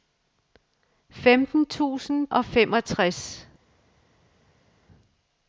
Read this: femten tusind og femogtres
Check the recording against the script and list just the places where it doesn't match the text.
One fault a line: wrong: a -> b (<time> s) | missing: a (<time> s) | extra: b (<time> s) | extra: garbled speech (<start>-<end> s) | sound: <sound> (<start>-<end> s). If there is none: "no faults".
no faults